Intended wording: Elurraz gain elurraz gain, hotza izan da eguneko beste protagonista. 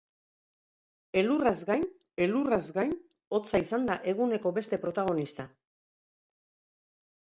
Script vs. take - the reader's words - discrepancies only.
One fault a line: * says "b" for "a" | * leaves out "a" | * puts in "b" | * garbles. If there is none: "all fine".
all fine